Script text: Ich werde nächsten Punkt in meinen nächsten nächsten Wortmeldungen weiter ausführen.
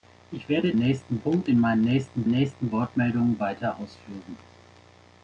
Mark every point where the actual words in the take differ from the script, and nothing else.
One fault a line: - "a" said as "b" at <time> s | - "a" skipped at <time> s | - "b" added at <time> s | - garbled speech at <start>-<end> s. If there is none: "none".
none